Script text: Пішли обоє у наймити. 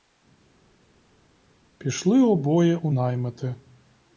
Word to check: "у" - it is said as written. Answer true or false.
true